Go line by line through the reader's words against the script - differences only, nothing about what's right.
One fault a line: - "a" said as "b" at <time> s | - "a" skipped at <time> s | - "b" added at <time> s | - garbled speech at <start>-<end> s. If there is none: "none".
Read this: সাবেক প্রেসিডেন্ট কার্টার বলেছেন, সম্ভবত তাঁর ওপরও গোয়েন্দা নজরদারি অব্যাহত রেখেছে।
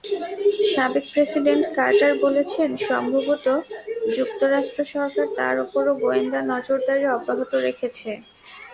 - "যুক্তরাষ্ট্র সরকার" added at 4.2 s